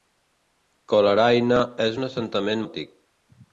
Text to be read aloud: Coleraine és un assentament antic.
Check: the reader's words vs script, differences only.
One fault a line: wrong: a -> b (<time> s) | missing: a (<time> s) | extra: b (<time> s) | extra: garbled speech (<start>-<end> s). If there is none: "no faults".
no faults